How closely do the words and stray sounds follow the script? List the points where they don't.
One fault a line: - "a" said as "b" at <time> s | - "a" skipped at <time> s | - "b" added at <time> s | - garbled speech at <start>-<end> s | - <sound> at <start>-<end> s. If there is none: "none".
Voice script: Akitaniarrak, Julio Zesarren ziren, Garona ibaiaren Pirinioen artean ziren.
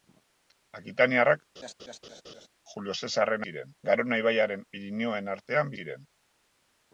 - laugh at 1.6-2.5 s